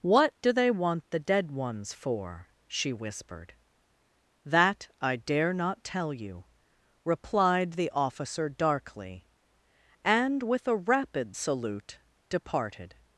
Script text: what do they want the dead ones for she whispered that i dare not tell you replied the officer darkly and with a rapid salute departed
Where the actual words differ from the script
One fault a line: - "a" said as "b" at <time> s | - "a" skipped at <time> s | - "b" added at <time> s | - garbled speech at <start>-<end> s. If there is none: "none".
none